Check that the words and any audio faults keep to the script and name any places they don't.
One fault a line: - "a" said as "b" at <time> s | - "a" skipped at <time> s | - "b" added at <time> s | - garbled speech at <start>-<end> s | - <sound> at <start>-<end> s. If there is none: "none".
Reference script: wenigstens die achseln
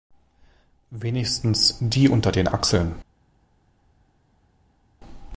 - "unter den" added at 2.1 s